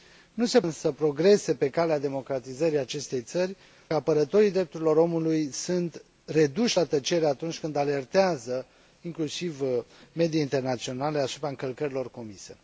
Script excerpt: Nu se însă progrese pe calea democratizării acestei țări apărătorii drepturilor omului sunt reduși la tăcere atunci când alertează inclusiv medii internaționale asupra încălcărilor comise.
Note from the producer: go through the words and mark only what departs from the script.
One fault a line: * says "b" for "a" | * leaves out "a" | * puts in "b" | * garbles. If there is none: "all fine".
all fine